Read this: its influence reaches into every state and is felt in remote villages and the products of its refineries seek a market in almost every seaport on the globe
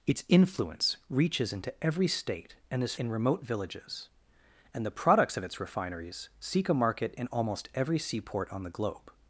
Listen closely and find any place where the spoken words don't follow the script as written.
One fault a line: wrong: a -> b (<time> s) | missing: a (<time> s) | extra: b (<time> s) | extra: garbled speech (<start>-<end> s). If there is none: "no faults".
missing: felt (3.0 s)